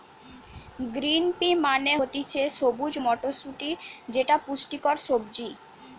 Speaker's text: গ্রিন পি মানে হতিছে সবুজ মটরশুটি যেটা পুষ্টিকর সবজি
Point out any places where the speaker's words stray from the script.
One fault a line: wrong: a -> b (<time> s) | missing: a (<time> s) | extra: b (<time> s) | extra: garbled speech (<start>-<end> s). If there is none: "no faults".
no faults